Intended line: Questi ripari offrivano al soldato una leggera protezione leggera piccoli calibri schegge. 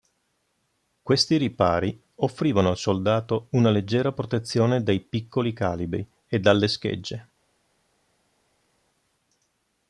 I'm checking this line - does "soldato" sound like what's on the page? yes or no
yes